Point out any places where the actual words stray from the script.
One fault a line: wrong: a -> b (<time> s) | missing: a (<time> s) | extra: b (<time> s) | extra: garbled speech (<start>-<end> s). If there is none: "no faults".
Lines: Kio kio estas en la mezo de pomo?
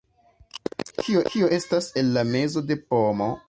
no faults